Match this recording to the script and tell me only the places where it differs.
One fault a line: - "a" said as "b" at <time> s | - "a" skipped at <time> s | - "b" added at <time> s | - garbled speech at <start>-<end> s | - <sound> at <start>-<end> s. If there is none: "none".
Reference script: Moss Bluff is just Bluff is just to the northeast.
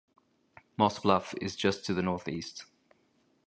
- "Bluff is just" skipped at 1.8 s